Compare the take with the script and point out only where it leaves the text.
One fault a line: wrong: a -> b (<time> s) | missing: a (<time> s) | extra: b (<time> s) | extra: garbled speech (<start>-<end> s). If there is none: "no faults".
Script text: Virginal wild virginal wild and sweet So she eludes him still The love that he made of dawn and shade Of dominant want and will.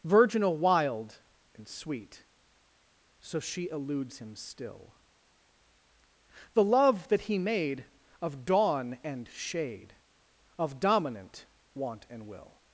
missing: virginal wild (1.2 s)